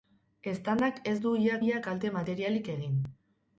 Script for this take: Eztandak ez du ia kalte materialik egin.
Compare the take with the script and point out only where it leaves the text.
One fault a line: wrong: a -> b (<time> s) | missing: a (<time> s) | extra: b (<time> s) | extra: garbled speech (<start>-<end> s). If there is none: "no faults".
extra: ia (1.7 s)